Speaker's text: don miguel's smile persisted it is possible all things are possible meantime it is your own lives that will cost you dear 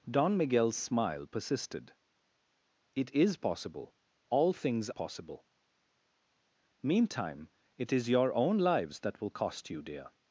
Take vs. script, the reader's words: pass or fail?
fail